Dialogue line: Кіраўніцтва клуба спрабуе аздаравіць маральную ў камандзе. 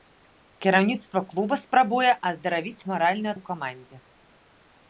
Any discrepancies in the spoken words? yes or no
no